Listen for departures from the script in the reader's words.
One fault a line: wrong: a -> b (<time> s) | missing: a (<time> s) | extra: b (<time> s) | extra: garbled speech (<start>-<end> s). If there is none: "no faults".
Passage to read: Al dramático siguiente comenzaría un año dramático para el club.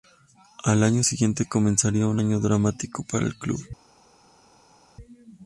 wrong: dramático -> año (0.8 s)